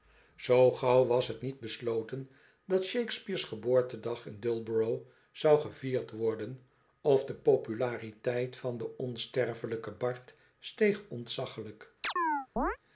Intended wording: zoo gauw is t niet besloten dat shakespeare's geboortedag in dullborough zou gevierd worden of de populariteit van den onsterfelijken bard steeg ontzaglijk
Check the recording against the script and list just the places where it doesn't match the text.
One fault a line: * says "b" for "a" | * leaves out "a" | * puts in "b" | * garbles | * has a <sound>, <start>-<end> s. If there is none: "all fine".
* says "was" for "is"
* has a chirp, 12.0-12.8 s